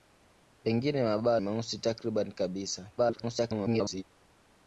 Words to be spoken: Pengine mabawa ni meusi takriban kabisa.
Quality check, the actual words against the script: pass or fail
fail